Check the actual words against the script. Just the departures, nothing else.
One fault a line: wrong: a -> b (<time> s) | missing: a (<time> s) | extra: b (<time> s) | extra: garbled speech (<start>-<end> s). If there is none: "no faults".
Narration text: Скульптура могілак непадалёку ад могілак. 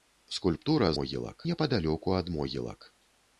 no faults